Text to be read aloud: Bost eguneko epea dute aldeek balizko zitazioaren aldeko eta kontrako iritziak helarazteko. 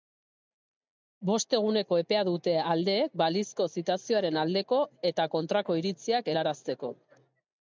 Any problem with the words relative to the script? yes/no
no